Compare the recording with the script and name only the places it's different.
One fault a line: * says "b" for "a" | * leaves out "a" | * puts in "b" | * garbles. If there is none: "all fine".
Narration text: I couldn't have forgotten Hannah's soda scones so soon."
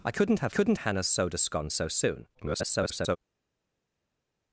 * says "couldn't" for "forgotten"
* garbles